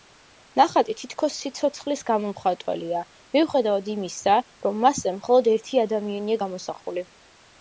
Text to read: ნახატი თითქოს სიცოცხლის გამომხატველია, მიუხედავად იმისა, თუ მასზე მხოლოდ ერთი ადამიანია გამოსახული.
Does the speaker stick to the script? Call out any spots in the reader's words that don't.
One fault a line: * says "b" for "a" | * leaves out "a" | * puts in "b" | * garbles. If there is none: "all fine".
* says "რომ" for "თუ"